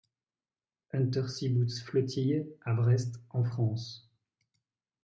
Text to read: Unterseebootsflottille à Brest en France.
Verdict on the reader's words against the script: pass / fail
pass